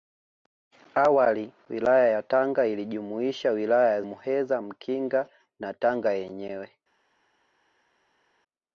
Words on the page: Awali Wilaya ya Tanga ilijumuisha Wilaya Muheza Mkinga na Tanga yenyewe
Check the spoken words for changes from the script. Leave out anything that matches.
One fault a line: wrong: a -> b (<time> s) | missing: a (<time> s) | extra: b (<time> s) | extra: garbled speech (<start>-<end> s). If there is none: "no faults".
no faults